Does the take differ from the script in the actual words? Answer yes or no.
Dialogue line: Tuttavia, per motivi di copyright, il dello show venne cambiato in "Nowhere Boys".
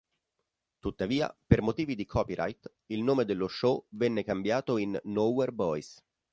yes